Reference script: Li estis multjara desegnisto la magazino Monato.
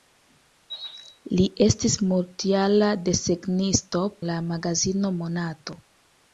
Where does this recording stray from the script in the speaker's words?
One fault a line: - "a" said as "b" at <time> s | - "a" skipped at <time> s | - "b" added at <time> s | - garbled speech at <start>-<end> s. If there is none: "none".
none